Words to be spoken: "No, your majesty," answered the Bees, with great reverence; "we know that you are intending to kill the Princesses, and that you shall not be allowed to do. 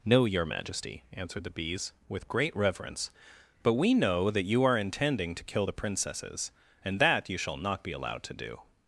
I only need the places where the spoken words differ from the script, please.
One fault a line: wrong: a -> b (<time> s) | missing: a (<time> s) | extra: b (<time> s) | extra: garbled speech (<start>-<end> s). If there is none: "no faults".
extra: but (3.6 s)